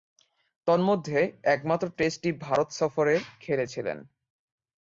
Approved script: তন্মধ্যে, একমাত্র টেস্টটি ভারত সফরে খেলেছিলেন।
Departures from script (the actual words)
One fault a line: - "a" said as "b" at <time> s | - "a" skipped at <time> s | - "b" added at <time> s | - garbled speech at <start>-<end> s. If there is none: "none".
none